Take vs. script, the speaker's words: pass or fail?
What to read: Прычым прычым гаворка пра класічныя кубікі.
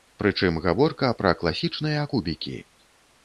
fail